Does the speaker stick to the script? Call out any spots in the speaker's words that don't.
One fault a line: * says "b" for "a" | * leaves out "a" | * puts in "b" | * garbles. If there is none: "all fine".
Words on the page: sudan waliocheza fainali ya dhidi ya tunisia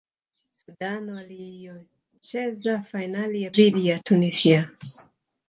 all fine